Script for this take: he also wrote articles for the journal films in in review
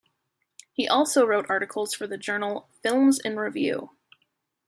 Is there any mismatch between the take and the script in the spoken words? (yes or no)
yes